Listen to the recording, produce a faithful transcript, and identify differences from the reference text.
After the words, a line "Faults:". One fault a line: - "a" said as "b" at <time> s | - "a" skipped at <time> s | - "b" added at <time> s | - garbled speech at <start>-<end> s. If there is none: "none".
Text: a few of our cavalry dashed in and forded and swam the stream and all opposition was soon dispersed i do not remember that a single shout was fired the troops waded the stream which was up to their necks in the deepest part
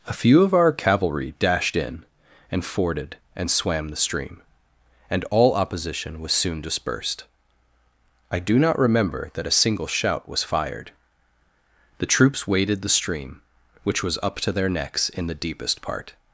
a few of our cavalry dashed in and forded and swam the stream and all opposition was soon dispersed i do not remember that a single shout was fired the troops waded the stream which was up to their necks in the deepest part
Faults:
none